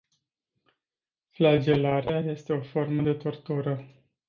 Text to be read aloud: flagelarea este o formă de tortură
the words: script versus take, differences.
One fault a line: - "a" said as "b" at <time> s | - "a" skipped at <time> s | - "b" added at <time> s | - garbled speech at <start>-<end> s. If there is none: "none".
none